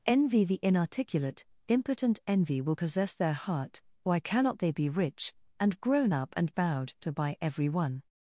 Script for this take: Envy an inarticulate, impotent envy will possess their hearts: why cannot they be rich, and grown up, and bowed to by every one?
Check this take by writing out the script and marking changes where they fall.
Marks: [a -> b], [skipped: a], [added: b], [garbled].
Envy [an -> the] inarticulate, impotent envy will possess their [hearts: -> heart] why cannot they be rich, and grown up, and bowed to by every one?